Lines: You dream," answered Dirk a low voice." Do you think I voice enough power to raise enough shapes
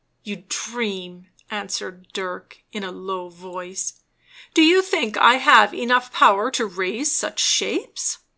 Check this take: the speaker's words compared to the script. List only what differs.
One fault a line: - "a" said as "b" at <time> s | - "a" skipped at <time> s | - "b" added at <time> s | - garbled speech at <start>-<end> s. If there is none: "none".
- "in" added at 2.7 s
- "voice" said as "have" at 5.3 s
- "enough" said as "such" at 7.2 s